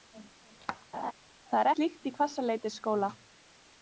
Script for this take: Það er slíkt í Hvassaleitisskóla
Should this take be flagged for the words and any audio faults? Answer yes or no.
yes